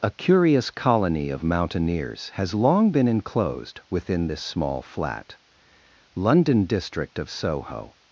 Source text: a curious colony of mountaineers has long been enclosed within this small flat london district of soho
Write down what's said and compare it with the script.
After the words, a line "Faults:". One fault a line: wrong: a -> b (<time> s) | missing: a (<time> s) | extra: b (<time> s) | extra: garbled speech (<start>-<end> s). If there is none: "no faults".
a curious colony of mountaineers has long been enclosed within this small flat london district of soho
Faults:
no faults